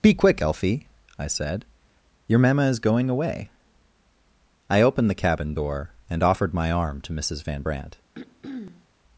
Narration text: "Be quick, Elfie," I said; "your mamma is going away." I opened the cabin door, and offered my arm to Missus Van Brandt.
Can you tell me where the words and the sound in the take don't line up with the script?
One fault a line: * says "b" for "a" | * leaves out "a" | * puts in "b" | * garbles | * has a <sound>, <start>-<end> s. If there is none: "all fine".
* has a throat clearing, 8.1-8.9 s